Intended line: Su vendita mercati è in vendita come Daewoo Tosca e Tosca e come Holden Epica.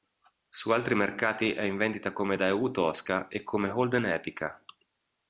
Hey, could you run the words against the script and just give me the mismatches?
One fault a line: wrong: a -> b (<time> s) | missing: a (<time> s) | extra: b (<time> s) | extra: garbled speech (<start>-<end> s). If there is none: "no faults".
wrong: vendita -> altri (0.7 s)
missing: Tosca e (3.4 s)